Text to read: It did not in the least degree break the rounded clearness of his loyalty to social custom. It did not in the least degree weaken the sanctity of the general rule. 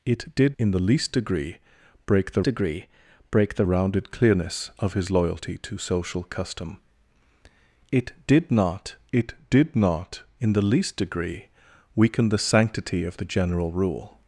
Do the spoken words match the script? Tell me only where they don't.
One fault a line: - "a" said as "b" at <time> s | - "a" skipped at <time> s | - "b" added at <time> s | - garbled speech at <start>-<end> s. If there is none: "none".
- "not" skipped at 0.6 s
- "degree break the" added at 2.4 s
- "it did not" added at 9.1 s